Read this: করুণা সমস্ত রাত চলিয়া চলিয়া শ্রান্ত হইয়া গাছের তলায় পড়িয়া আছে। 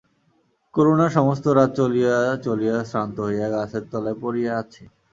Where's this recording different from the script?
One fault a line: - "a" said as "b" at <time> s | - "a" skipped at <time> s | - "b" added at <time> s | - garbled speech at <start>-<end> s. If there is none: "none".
none